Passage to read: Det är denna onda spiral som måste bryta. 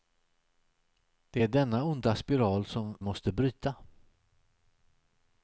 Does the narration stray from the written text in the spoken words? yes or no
no